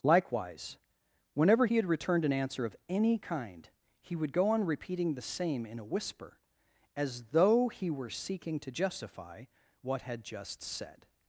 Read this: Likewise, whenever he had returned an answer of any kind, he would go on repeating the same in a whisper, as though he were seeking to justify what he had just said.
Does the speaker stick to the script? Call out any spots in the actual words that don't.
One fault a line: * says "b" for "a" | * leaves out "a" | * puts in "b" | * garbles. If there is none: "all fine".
* leaves out "he"